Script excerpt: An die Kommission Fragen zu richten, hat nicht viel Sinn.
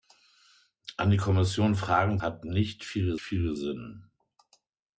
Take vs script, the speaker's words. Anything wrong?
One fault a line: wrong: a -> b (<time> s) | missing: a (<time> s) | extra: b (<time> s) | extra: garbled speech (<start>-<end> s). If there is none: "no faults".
missing: zu richten (2.2 s)
extra: viel (3.2 s)